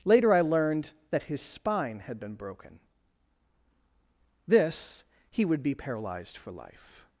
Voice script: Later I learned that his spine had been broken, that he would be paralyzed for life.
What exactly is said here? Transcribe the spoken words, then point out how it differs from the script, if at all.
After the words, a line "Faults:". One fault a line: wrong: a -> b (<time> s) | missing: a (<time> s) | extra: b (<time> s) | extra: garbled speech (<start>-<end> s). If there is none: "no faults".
Later I learned that his spine had been broken, this he would be paralyzed for life.
Faults:
wrong: that -> this (4.5 s)